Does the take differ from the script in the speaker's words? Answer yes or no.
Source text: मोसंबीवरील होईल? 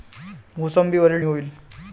no